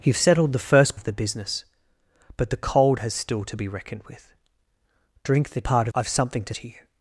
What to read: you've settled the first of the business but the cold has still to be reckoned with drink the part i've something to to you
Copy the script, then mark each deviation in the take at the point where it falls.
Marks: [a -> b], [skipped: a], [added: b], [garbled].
you've settled the first of the business but the cold has still to be reckoned with drink the part i've something to to you